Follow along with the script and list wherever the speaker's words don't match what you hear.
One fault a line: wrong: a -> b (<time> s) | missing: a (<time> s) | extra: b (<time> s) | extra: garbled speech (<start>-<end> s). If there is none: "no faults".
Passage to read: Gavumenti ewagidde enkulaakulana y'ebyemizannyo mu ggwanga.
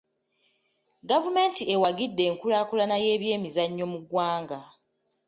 no faults